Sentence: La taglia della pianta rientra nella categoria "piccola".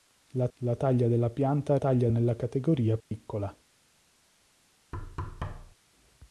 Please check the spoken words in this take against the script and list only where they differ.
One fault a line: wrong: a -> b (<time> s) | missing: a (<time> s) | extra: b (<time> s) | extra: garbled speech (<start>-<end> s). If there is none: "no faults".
extra: la (0.6 s)
wrong: rientra -> taglia (1.8 s)